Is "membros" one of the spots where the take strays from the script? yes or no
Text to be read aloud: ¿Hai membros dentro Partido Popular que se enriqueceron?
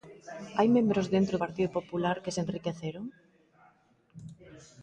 no